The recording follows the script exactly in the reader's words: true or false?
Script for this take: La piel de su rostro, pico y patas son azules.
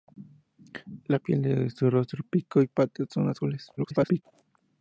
false